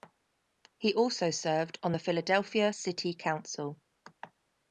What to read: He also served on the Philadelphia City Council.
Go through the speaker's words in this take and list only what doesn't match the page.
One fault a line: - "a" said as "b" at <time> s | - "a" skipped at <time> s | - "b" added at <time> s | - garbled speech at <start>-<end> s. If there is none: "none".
none